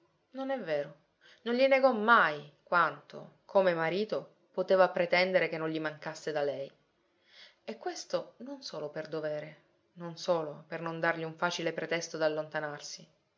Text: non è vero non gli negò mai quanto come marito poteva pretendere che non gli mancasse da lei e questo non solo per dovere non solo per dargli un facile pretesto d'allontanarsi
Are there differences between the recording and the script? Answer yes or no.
yes